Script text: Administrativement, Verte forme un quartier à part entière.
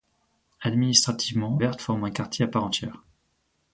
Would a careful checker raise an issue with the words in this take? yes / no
no